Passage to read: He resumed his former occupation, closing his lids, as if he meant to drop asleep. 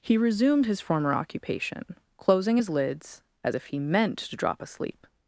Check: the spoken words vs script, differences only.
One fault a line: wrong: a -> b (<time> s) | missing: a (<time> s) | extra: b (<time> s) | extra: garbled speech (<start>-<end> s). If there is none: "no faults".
no faults